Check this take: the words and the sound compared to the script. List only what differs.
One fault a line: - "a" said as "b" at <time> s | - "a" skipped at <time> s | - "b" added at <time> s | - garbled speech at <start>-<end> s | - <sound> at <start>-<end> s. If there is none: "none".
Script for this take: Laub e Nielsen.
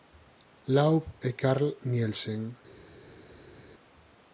- "Carl" added at 1.4 s